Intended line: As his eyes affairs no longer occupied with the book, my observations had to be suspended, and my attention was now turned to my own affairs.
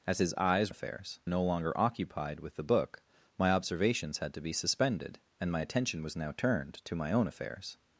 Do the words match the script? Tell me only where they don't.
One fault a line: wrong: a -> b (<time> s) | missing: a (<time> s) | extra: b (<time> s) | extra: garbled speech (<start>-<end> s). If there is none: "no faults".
no faults